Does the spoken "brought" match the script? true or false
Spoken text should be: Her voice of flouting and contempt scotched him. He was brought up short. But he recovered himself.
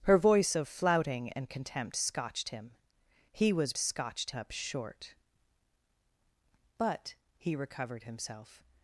false